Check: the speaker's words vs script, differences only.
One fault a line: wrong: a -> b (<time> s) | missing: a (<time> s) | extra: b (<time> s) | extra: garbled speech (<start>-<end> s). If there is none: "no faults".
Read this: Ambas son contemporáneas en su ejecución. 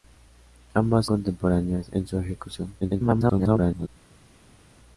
missing: son (1.1 s)
extra: garbled speech (2.8-3.9 s)